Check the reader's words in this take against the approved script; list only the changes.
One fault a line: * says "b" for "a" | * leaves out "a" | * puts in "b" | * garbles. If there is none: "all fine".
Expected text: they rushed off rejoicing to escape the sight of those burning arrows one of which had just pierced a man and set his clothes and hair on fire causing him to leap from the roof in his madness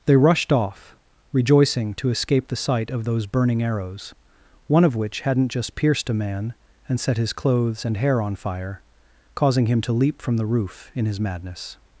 * says "hadn't" for "had"